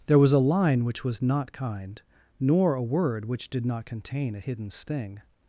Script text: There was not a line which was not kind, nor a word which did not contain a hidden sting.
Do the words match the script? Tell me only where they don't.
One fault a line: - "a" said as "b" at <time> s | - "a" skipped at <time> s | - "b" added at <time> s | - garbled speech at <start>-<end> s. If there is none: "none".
- "not" skipped at 0.3 s